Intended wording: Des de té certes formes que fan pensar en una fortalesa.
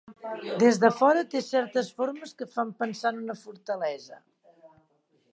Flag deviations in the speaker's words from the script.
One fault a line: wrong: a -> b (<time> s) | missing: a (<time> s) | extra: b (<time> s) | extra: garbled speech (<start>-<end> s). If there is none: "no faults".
extra: fora (1.0 s)